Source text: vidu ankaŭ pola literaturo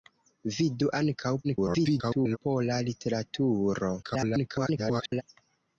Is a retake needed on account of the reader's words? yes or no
yes